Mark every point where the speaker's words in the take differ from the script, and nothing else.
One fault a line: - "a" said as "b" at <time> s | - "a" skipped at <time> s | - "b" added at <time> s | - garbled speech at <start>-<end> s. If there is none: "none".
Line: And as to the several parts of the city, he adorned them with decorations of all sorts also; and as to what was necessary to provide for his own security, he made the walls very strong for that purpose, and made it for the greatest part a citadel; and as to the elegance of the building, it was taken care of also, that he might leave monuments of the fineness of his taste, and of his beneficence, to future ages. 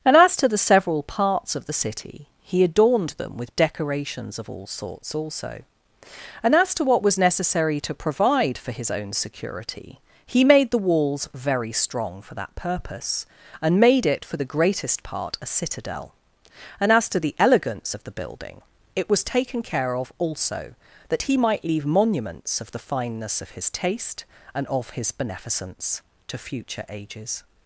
none